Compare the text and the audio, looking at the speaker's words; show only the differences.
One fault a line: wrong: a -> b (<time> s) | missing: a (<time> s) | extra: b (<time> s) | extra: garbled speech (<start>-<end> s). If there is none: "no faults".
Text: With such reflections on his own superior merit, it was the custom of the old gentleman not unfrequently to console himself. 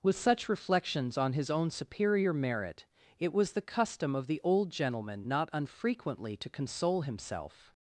no faults